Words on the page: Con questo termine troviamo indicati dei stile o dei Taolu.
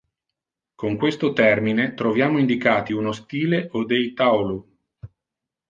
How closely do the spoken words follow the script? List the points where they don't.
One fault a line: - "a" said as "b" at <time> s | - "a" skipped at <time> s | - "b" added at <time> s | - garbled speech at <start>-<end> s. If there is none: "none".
- "dei" said as "uno" at 2.9 s